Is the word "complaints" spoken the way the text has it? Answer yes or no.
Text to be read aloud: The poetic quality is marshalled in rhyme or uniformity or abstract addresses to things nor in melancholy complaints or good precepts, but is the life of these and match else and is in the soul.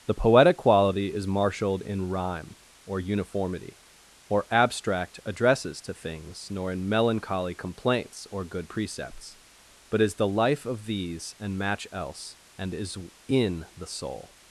yes